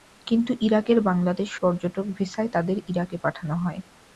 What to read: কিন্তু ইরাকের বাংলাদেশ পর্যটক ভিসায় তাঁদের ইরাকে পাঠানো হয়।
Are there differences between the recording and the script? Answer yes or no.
no